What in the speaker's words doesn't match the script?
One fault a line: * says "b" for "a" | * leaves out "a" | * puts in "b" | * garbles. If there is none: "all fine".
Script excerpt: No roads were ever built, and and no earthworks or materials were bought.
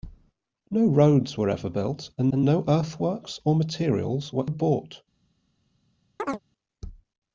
all fine